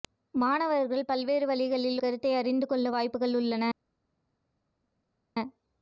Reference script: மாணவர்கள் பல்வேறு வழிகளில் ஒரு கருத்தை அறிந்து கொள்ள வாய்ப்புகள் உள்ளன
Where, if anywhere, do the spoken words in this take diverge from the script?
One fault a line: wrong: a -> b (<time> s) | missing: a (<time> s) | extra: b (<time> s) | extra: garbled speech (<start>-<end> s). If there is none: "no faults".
missing: ஒரு (2.0 s)